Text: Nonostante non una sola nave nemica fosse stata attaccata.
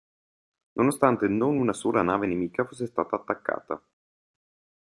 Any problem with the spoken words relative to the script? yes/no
no